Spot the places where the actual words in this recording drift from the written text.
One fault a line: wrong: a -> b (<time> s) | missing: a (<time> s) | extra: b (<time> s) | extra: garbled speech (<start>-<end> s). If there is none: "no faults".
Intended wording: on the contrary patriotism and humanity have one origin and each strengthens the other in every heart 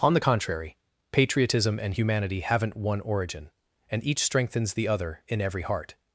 wrong: have -> haven't (2.4 s)